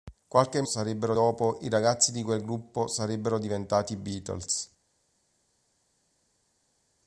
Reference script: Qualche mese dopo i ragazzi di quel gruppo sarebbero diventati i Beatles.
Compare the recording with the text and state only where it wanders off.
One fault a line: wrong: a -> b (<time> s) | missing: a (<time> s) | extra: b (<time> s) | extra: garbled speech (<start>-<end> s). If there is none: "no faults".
wrong: mese -> sarebbero (0.6 s)